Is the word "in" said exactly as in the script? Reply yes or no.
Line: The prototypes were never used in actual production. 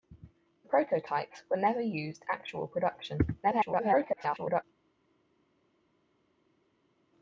no